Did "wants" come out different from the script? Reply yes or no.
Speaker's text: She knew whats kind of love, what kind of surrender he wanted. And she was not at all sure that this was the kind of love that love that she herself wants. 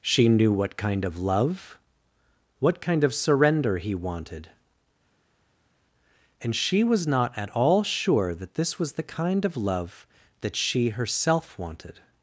yes